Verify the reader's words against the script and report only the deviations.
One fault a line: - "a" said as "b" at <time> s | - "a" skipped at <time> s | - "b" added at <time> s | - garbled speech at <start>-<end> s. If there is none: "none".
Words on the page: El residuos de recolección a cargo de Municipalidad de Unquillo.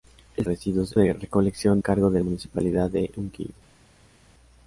none